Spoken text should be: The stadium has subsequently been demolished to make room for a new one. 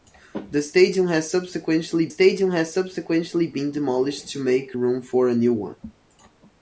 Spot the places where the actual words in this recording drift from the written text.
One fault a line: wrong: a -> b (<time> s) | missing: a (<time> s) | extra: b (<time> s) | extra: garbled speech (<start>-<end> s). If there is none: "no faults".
extra: stadium has subsequently (2.1 s)